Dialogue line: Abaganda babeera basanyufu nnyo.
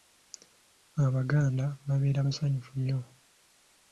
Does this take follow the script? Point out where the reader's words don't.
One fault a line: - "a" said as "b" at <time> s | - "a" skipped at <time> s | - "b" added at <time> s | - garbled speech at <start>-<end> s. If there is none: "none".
none